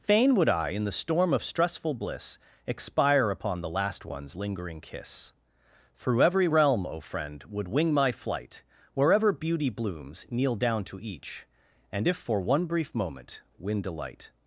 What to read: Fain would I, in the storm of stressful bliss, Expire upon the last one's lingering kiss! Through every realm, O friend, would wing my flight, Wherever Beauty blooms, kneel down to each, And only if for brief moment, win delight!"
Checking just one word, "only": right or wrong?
wrong